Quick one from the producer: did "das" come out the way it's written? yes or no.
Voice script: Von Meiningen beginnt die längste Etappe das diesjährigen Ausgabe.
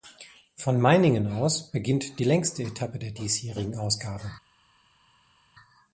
no